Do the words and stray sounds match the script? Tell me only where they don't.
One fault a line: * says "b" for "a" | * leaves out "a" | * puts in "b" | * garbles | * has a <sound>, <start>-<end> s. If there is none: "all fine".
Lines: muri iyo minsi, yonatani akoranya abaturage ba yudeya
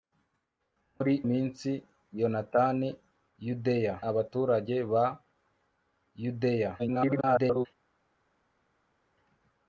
* leaves out "iyo"
* says "yudeya" for "akoranya"
* garbles